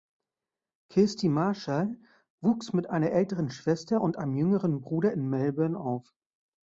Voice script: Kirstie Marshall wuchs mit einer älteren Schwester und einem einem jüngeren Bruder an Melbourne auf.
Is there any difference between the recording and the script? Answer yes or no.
yes